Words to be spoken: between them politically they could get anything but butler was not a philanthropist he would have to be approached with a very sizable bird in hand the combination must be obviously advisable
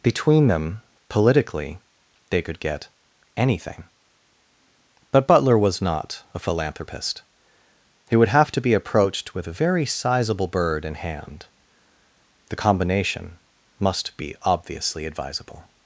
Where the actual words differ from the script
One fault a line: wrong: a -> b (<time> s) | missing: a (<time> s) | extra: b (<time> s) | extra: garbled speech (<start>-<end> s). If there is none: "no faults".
no faults